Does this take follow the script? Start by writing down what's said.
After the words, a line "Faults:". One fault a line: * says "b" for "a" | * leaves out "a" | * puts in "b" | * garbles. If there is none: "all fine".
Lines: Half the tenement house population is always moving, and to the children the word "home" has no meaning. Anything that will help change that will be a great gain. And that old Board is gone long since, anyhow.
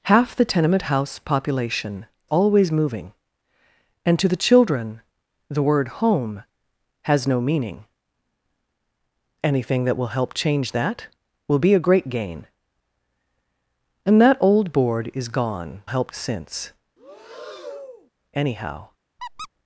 Half the tenement house population always moving, and to the children the word "home" has no meaning. Anything that will help change that will be a great gain. And that old Board is gone help since, anyhow.
Faults:
* leaves out "is"
* says "help" for "long"